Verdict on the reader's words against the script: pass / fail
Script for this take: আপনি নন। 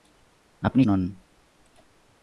pass